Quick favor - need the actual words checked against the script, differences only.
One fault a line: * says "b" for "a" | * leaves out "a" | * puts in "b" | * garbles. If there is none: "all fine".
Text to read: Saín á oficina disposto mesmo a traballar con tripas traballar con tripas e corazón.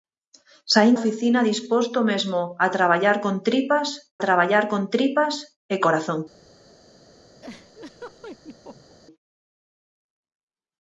all fine